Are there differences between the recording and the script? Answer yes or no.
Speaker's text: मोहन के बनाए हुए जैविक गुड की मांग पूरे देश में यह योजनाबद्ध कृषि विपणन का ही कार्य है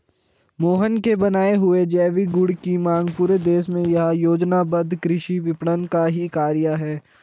no